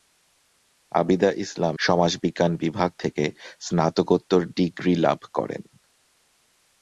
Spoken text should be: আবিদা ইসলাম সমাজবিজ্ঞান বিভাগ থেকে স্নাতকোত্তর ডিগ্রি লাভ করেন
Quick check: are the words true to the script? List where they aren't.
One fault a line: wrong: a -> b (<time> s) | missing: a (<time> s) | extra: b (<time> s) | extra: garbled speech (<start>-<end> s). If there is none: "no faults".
no faults